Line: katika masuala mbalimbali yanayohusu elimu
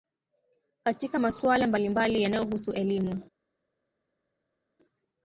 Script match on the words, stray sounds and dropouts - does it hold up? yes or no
yes